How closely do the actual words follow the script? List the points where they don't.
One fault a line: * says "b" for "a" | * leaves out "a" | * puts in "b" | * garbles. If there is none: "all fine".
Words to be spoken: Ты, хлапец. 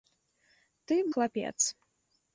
all fine